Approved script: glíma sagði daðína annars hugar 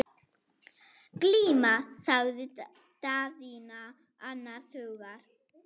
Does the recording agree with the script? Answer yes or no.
yes